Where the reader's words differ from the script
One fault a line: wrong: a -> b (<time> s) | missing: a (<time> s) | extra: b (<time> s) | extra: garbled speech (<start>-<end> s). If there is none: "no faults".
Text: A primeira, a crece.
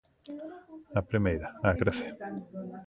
no faults